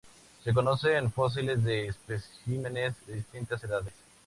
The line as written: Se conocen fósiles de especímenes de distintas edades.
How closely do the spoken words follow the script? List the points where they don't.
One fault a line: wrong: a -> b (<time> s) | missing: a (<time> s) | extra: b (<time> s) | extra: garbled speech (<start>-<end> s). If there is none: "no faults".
no faults